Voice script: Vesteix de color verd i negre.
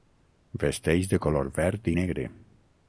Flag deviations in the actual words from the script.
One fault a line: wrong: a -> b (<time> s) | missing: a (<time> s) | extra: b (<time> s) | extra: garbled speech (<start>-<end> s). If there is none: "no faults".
no faults